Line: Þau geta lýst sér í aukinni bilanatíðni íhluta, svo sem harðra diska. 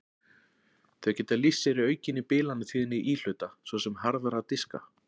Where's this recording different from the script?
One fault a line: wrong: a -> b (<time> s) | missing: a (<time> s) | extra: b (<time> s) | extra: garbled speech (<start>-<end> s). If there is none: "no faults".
no faults